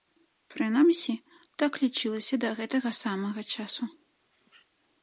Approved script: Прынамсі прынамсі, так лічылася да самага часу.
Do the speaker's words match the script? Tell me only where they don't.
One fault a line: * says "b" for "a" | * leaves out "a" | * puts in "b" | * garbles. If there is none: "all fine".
* leaves out "прынамсі"
* puts in "гэтага"